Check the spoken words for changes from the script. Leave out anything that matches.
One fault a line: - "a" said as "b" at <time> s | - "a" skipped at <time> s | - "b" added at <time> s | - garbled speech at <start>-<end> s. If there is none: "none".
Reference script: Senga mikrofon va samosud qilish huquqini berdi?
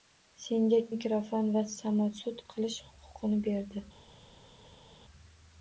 none